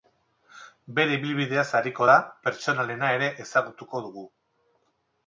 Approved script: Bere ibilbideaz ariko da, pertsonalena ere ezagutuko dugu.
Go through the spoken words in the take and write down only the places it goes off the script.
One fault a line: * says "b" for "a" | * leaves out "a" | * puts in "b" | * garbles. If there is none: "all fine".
all fine